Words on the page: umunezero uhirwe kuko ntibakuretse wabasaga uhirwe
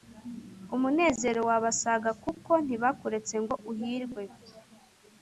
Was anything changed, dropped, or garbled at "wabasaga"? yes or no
yes